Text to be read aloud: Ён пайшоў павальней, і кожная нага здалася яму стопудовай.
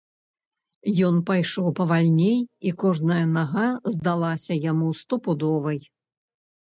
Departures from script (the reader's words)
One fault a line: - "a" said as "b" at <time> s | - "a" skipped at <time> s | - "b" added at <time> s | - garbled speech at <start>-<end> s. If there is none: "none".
none